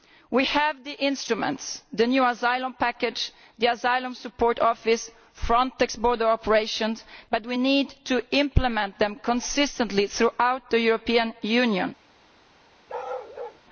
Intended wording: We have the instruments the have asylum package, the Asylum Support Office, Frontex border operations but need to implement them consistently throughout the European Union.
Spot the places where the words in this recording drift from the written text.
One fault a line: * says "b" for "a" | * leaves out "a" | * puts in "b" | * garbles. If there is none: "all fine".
* says "new" for "have"
* puts in "we"